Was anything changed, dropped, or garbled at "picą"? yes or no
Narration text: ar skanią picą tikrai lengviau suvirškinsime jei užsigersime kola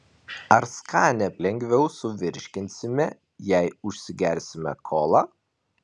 yes